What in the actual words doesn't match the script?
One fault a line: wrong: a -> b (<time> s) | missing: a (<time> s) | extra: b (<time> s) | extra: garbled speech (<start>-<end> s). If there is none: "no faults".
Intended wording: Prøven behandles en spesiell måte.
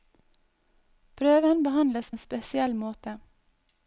no faults